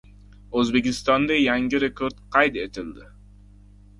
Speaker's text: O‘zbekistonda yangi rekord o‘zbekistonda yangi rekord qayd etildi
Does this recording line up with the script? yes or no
no